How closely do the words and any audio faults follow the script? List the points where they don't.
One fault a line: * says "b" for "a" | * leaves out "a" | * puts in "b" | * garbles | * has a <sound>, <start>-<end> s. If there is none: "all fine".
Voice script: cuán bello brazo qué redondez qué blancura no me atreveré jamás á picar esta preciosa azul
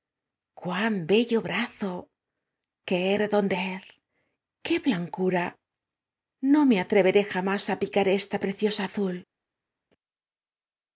all fine